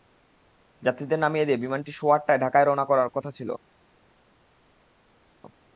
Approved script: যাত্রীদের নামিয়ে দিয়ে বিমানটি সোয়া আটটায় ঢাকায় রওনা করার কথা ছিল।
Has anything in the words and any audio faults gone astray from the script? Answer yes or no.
no